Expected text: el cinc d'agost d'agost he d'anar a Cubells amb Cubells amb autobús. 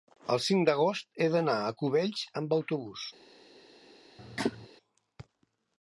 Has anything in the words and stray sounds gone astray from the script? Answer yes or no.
yes